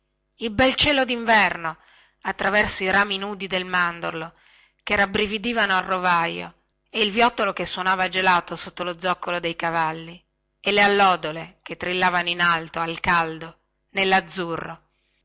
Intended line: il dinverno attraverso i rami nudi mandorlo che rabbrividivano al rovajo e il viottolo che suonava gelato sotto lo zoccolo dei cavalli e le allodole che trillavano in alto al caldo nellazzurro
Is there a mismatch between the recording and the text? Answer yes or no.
yes